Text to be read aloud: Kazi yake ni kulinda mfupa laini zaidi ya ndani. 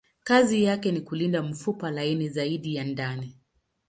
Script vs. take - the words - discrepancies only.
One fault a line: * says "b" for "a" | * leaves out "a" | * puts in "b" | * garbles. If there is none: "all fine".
all fine